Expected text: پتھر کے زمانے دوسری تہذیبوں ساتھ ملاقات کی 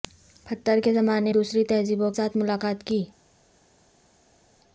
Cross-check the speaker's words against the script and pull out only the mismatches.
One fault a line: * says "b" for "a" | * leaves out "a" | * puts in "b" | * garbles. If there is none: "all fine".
all fine